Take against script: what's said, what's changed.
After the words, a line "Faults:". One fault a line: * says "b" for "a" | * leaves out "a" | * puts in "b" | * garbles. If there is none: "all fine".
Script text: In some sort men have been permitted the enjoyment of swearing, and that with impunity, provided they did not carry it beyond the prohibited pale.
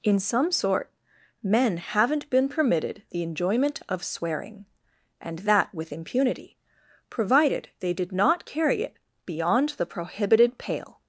In some sort men haven't been permitted the enjoyment of swearing, and that with impunity, provided they did not carry it beyond the prohibited pale.
Faults:
* says "haven't" for "have"